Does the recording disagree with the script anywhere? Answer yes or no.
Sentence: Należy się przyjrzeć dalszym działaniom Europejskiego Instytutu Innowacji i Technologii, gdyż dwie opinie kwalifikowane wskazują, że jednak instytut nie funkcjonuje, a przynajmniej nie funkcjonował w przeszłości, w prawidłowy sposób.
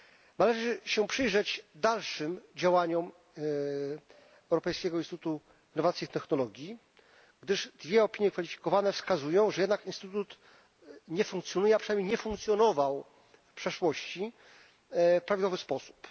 no